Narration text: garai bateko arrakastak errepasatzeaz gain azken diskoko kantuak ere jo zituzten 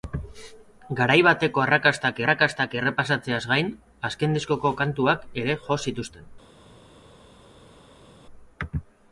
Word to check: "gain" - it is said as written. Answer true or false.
true